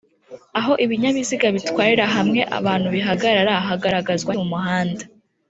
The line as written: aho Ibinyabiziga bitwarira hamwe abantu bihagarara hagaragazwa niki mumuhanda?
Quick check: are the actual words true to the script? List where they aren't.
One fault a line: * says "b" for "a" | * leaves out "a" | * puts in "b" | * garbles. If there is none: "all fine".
* leaves out "niki"